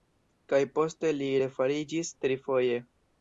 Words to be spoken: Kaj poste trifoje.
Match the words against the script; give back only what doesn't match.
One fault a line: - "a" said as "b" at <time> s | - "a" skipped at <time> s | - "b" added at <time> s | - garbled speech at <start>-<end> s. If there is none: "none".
- "li refariĝis" added at 1.2 s